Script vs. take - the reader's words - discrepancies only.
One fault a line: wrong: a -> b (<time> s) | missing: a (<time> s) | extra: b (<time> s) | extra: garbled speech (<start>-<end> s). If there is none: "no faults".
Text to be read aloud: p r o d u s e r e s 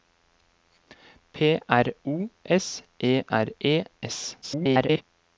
missing: d u (2.3 s)
extra: garbled speech (4.4-5.0 s)